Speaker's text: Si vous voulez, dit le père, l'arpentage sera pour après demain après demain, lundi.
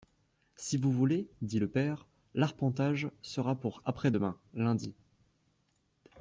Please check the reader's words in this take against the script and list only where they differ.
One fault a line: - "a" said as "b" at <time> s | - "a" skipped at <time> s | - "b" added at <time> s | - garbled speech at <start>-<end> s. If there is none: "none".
- "après demain" skipped at 4.4 s